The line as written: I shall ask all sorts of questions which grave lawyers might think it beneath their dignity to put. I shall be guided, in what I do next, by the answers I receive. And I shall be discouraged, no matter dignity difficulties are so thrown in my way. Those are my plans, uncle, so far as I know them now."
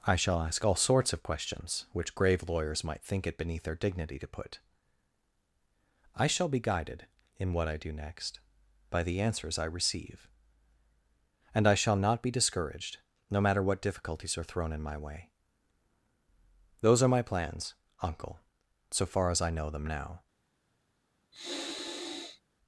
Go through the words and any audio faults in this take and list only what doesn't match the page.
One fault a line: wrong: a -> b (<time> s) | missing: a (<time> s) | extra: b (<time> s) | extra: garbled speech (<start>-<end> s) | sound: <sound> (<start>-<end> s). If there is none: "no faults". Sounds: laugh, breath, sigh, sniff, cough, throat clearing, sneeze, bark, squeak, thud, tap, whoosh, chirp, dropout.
extra: not (12.0 s)
wrong: dignity -> what (13.6 s)
missing: so (14.4 s)
sound: sniff (21.3-22.4 s)